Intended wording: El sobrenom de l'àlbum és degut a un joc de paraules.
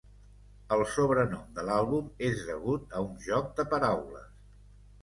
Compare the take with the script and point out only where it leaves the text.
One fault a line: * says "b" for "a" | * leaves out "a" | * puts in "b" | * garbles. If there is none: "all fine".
all fine